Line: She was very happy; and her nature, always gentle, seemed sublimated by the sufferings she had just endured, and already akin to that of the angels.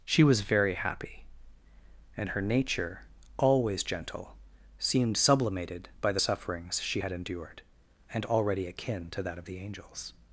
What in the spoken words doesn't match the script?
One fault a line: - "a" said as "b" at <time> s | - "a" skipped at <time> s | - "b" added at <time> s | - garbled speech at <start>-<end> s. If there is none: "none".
- "just" skipped at 7.1 s